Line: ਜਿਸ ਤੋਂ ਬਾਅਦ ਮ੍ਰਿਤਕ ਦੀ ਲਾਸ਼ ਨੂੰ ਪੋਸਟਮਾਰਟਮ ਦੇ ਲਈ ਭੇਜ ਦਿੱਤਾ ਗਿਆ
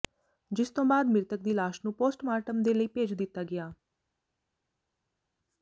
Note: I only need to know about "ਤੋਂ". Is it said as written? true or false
true